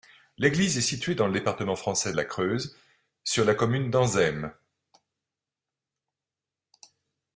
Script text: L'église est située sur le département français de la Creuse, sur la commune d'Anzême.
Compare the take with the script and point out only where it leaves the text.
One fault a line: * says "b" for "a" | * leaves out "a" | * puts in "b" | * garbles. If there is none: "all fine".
* says "dans" for "sur"